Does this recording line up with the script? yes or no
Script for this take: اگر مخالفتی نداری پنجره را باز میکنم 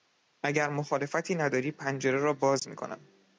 yes